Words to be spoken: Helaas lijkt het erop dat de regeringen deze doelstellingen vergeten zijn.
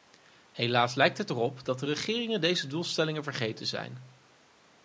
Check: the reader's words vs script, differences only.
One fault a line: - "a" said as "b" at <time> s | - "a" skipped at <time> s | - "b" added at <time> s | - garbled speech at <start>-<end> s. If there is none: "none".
none